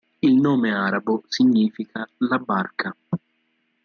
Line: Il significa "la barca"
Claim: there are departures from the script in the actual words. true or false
true